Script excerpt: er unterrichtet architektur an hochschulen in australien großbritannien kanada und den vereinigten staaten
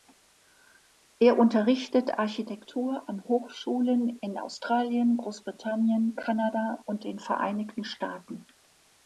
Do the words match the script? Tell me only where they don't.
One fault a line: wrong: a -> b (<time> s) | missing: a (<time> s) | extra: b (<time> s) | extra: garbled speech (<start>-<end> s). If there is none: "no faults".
no faults